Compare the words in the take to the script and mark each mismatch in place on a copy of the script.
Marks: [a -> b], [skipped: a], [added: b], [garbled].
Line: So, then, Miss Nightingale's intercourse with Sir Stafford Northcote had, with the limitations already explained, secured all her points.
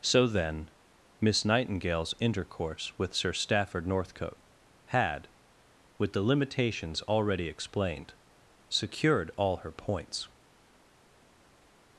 So, then, Miss Nightingale's intercourse with Sir Stafford Northcote had, with the limitations already explained, secured all her points.